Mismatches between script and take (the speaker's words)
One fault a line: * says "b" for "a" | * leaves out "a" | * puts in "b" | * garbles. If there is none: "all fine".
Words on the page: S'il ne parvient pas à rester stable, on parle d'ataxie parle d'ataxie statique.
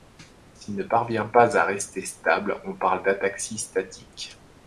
* leaves out "parle d'ataxie"